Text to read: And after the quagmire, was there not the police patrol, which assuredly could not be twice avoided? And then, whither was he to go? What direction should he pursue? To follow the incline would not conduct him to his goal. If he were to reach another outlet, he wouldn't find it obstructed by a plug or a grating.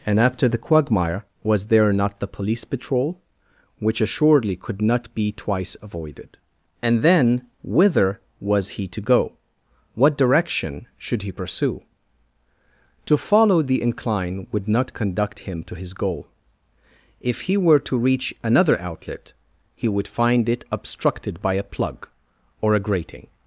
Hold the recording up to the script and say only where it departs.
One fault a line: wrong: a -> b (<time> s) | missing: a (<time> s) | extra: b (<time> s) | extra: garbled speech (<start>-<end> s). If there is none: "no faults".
wrong: wouldn't -> would (19.9 s)